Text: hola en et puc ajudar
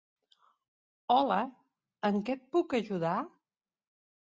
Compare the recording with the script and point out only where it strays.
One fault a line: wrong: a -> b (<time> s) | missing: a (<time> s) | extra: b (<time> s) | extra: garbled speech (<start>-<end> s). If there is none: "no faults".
extra: què (2.3 s)